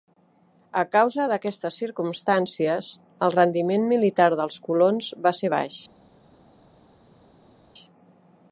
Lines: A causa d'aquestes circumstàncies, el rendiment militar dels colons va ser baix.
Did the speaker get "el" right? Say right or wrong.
right